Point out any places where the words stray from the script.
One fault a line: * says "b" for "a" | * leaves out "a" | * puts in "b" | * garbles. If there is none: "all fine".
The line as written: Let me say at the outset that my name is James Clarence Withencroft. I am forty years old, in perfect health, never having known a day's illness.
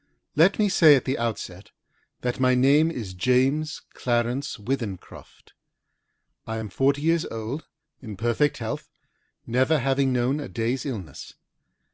all fine